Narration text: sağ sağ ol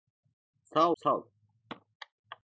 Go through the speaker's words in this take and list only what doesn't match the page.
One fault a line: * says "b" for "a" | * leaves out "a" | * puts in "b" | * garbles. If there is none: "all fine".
all fine